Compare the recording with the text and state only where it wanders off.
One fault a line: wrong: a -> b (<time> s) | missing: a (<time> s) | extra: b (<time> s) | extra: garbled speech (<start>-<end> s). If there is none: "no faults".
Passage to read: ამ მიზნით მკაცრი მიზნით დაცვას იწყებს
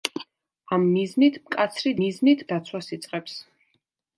no faults